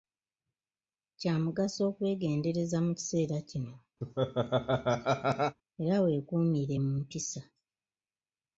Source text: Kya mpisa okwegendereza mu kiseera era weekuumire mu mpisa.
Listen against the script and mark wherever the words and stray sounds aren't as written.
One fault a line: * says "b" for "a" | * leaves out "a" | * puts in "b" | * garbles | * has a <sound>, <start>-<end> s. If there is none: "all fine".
* says "mugaso" for "mpisa"
* puts in "kino"
* has a laugh, 4.0-5.6 s